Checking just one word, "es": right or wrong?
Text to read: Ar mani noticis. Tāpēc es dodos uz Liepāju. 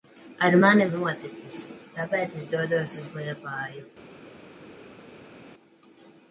right